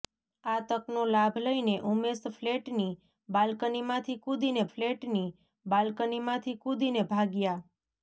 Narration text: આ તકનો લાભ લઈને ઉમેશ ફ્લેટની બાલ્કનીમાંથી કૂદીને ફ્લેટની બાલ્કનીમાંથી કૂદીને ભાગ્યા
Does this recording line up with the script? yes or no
yes